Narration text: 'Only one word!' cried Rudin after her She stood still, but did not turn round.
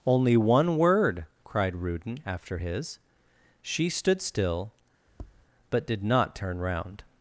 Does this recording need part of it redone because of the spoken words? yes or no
yes